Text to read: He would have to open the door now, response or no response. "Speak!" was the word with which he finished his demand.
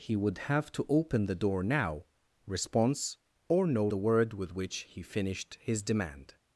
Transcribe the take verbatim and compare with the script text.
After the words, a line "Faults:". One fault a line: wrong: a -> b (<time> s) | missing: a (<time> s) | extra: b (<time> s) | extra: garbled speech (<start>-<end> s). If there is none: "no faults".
He would have to open the door now, response or no the word with which he finished his demand.
Faults:
missing: response Speak was (3.9 s)